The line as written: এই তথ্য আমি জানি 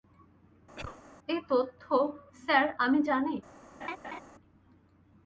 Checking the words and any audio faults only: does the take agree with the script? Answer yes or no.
no